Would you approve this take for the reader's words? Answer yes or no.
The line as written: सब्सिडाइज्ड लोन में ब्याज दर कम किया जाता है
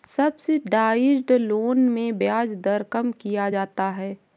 yes